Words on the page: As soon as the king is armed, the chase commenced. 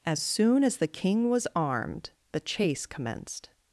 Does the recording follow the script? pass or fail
fail